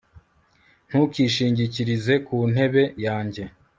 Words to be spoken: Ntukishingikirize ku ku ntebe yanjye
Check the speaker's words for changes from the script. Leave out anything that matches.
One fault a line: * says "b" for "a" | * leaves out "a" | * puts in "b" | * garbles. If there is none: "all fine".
* leaves out "ku"